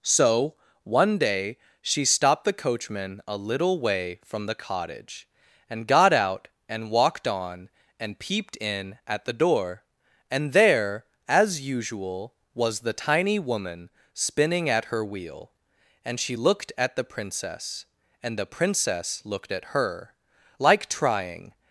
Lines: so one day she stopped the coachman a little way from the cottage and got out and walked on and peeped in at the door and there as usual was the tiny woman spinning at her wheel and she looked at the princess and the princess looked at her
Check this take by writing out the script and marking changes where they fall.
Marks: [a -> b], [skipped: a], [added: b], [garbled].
so one day she stopped the coachman a little way from the cottage and got out and walked on and peeped in at the door and there as usual was the tiny woman spinning at her wheel and she looked at the princess and the princess looked at her [added: like trying]